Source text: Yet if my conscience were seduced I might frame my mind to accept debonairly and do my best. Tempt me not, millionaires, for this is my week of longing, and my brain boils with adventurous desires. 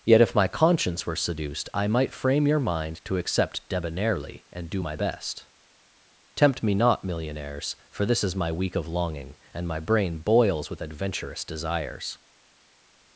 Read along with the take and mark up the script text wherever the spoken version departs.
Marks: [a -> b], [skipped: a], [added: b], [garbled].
Yet if my conscience were seduced I might frame [my -> your] mind to accept debonairly and do my best. Tempt me not, millionaires, for this is my week of longing, and my brain boils with adventurous desires.